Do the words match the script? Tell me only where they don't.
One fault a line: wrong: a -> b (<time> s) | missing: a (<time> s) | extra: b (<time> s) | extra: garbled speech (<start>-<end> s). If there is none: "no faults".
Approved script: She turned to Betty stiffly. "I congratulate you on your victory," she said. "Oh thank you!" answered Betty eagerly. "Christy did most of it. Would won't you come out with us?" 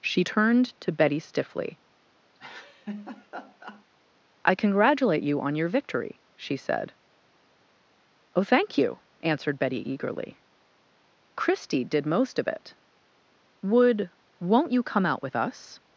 no faults